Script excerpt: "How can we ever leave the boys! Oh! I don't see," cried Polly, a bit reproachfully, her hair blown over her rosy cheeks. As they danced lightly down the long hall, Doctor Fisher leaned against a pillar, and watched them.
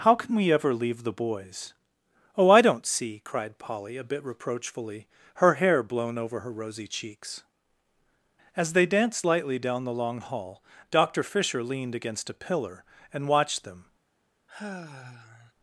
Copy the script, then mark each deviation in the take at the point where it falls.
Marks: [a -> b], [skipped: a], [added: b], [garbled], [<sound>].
"How can we ever leave the boys! Oh! I don't see," cried Polly, a bit reproachfully, her hair blown over her rosy cheeks. As they danced lightly down the long hall, Doctor Fisher leaned against a pillar, and watched them. [sigh]